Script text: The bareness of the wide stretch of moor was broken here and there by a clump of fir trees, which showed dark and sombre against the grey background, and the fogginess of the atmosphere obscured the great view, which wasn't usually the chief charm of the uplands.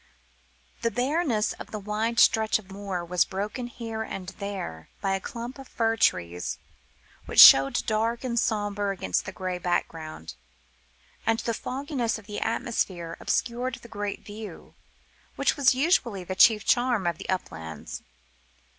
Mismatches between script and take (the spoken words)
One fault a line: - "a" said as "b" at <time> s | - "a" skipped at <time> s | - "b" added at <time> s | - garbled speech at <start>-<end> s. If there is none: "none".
- "wasn't" said as "was" at 15.6 s